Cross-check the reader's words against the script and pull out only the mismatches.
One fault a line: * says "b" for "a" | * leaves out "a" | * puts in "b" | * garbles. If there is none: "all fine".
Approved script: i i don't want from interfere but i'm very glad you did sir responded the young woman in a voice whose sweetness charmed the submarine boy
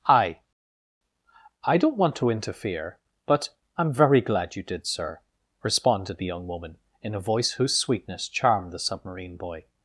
* says "to" for "from"